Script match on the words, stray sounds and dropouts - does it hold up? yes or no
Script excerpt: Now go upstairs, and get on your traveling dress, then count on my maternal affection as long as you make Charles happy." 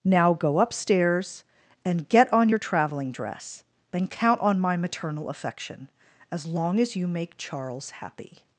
yes